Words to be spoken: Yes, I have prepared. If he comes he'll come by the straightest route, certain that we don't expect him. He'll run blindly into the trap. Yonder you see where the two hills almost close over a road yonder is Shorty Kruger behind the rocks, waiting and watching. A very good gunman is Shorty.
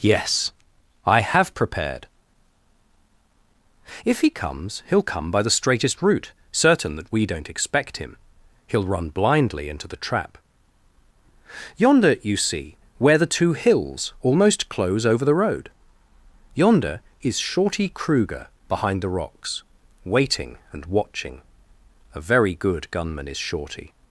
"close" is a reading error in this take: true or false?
false